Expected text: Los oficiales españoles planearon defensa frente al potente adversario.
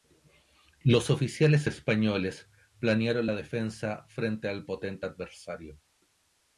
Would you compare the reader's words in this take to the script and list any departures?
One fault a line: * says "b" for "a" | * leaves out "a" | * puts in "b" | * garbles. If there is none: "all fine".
* puts in "la"